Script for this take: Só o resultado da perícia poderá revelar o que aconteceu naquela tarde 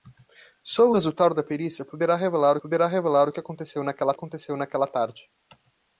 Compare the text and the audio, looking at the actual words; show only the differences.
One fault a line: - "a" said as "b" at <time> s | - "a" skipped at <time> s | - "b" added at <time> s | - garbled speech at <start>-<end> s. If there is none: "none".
- "poderá revelar" added at 2.6 s
- "aconteceu naquela" added at 4.1 s